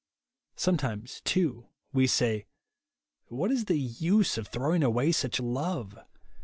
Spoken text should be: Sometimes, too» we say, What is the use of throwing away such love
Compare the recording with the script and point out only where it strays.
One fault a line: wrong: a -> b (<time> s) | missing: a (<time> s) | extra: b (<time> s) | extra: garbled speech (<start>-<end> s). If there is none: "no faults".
no faults